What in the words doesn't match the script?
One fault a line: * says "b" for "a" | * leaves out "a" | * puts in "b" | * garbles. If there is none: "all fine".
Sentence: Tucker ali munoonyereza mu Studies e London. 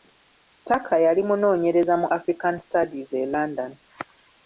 * says "yali" for "ali"
* puts in "African"